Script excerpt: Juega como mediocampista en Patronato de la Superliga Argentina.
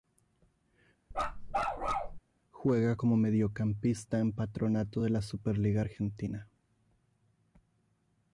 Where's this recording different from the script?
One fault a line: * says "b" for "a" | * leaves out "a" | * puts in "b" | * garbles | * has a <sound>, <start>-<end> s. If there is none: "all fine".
* has a bark, 1.1-2.2 s